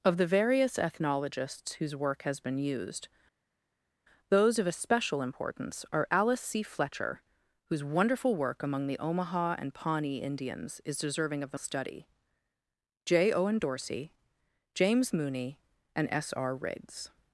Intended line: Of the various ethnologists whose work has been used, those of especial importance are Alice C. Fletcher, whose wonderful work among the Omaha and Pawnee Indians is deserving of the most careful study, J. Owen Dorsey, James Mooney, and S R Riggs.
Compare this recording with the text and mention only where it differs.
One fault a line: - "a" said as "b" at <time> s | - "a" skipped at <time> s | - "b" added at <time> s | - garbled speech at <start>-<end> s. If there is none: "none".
- "most careful" skipped at 11.6 s